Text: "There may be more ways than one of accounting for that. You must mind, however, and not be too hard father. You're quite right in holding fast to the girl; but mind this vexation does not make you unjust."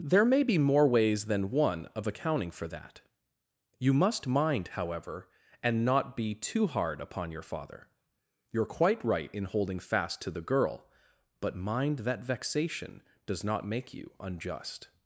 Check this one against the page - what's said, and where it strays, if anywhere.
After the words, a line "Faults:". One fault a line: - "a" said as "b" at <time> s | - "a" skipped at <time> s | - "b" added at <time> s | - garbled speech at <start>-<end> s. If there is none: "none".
"There may be more ways than one of accounting for that. You must mind, however, and not be too hard upon your father. You're quite right in holding fast to the girl; but mind that vexation does not make you unjust."
Faults:
- "upon your" added at 7.0 s
- "this" said as "that" at 12.0 s